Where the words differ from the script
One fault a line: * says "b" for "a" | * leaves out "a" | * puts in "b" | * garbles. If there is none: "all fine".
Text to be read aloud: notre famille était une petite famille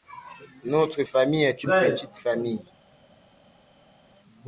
* says "est" for "était"